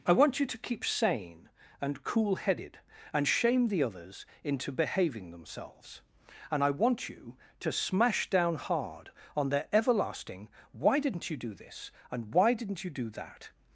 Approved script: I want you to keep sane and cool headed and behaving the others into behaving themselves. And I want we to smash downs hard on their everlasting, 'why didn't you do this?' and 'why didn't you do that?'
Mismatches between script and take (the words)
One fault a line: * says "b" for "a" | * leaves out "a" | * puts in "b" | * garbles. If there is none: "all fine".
* says "shame" for "behaving"
* says "you" for "we"
* says "down" for "downs"